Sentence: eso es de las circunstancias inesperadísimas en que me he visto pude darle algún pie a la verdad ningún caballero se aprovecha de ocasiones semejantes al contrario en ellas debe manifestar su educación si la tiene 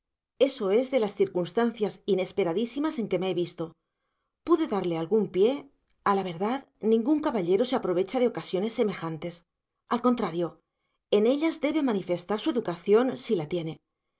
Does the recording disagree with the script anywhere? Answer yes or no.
no